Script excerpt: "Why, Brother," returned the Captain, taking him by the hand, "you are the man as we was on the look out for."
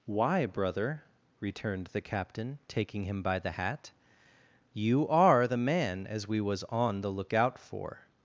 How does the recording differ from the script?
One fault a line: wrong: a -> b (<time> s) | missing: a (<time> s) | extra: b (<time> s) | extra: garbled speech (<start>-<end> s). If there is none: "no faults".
wrong: hand -> hat (3.5 s)